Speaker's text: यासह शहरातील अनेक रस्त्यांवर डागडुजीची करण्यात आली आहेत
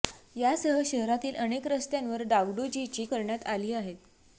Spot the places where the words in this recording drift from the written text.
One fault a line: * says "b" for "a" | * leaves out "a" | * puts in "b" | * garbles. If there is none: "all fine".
all fine